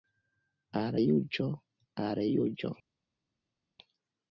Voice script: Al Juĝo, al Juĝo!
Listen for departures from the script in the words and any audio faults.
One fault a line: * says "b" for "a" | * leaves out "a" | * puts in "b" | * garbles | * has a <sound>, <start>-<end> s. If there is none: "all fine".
all fine